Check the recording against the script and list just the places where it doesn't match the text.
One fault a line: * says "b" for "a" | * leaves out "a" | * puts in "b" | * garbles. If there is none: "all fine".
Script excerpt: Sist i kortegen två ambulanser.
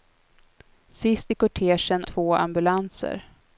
all fine